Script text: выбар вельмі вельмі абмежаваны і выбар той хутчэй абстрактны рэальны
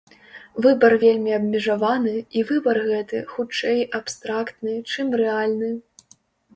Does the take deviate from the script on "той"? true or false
true